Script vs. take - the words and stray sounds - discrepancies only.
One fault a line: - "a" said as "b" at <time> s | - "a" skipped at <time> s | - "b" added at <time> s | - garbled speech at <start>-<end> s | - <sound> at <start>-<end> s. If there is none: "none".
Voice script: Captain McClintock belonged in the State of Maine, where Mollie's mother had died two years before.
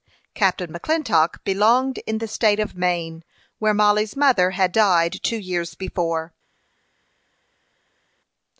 none